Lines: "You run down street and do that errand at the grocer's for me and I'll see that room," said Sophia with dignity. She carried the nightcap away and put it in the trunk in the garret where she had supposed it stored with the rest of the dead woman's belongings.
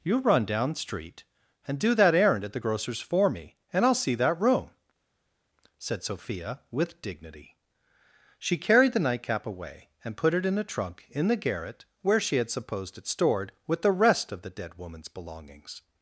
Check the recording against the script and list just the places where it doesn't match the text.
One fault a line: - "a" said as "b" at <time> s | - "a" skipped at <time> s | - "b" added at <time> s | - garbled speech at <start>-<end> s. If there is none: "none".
- "the" said as "a" at 10.6 s